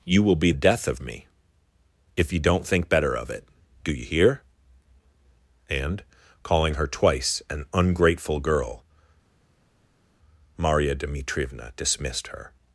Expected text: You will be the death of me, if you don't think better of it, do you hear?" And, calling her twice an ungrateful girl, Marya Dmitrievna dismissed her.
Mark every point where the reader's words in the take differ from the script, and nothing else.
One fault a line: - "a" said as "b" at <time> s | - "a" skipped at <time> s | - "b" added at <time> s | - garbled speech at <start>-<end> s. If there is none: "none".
- "the" skipped at 0.5 s